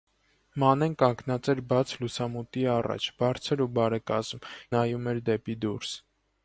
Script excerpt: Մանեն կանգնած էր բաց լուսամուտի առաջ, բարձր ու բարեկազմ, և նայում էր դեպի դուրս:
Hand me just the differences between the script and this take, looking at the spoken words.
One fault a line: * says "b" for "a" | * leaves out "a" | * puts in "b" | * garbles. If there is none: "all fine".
* leaves out "և"